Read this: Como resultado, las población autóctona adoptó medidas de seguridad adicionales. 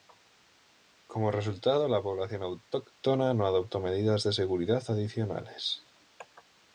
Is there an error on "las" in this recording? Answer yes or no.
yes